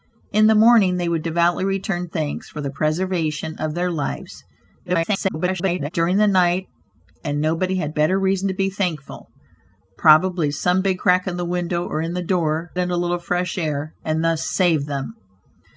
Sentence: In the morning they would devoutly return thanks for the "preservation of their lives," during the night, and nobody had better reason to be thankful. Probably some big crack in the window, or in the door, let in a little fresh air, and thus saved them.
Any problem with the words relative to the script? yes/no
yes